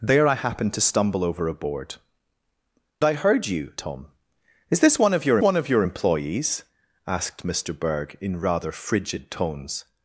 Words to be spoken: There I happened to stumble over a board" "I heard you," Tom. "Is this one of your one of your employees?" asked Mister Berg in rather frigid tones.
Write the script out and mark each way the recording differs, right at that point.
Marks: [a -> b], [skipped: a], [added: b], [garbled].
There I happened to stumble over a board" "I heard you," Tom. "Is this one of your one of your employees?" asked Mister Berg in rather frigid tones.